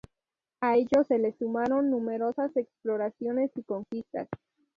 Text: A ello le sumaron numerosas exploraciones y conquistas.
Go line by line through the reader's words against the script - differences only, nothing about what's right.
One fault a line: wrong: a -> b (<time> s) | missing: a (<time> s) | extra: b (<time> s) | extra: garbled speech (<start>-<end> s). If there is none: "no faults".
extra: se (1.1 s)